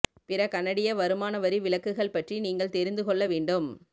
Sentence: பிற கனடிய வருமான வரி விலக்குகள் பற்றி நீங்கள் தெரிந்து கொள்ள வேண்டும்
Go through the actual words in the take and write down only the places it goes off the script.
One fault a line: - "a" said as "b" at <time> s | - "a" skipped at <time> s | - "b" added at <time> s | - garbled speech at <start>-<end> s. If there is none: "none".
none